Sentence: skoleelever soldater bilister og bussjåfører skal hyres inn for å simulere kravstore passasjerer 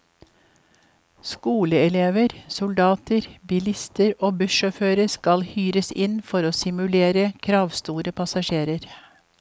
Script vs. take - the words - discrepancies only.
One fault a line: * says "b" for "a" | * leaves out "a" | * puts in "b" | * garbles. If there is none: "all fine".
all fine